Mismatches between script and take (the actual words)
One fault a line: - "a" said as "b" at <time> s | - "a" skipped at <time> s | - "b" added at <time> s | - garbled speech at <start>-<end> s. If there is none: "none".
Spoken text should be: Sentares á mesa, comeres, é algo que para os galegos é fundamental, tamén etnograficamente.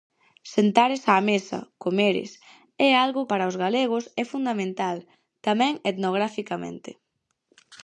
- "que" skipped at 3.3 s